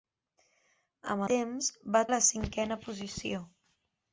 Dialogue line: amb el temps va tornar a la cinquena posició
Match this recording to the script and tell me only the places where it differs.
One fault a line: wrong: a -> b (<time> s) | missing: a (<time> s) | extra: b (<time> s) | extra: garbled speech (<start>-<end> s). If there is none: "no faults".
missing: el (1.2 s)
missing: tornar (2.0 s)